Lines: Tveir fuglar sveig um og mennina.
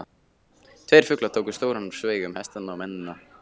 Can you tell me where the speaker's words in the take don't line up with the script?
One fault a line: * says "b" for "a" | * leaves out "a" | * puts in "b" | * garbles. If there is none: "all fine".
* puts in "tóku stóran"
* puts in "hestana"